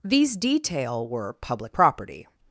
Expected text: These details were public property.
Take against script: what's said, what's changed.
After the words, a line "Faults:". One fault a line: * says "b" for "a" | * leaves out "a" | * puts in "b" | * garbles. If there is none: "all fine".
These detail were public property.
Faults:
* says "detail" for "details"